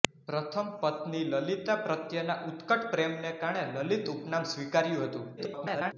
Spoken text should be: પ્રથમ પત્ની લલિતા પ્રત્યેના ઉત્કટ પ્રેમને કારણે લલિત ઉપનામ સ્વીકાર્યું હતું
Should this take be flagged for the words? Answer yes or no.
yes